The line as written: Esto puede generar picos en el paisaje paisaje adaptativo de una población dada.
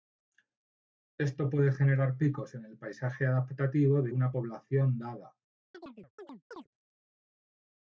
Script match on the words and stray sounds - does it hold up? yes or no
no